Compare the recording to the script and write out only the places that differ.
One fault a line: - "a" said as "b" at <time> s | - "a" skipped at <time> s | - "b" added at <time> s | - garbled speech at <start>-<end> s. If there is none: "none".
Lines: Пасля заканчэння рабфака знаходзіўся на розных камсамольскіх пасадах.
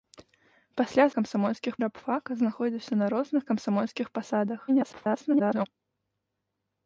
- "заканчэння" said as "камсамольскіх" at 1.2 s
- garbled speech at 4.7-5.7 s